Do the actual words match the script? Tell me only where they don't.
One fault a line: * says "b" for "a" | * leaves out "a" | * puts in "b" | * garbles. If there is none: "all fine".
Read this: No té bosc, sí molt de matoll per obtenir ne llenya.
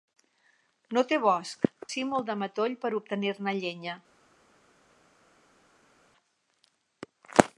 all fine